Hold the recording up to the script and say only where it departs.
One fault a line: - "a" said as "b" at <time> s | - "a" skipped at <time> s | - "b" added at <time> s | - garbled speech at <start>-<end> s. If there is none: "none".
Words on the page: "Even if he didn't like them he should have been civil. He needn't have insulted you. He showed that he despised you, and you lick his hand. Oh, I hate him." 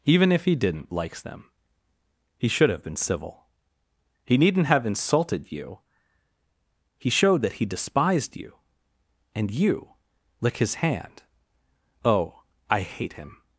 - "like" said as "likes" at 0.9 s